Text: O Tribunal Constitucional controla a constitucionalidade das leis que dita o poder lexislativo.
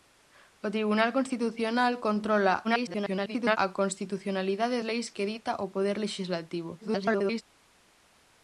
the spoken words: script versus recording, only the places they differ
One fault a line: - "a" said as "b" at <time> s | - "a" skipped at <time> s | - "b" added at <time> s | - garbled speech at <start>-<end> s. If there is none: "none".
- garbled speech at 2.6-3.6 s
- "das" skipped at 4.8 s
- garbled speech at 6.8-7.4 s